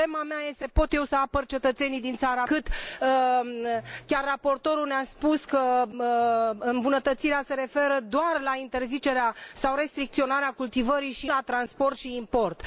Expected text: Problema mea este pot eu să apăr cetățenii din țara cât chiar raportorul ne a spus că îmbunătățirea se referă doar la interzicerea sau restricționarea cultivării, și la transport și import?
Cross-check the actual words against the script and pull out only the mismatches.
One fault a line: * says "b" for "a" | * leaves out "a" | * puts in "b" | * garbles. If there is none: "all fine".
all fine